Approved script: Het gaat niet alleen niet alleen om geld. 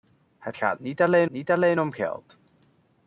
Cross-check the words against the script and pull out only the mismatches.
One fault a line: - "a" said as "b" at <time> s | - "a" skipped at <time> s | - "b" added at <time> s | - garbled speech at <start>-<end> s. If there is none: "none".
none